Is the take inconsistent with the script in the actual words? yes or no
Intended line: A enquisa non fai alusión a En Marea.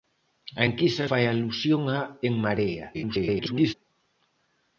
yes